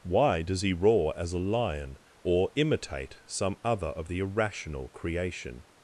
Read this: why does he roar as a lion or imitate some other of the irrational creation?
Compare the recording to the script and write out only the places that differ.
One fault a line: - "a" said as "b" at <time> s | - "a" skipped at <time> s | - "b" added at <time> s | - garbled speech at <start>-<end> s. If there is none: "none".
none